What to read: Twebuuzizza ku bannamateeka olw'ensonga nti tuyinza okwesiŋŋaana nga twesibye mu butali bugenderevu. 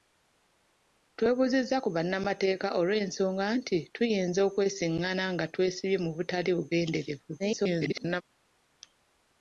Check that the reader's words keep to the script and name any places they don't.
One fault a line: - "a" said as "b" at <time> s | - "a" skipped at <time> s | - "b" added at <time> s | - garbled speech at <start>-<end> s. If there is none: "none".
- garbled speech at 7.4-8.2 s